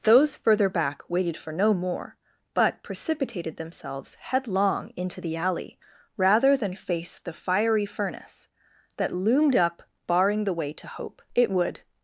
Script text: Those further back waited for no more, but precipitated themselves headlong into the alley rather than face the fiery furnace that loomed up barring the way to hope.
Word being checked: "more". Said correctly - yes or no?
yes